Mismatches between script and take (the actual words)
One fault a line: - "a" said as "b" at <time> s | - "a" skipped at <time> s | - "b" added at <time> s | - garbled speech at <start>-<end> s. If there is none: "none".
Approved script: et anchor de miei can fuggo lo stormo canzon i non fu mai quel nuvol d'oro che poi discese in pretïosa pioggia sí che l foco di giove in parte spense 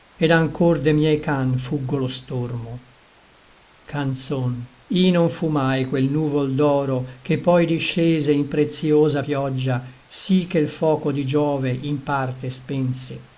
none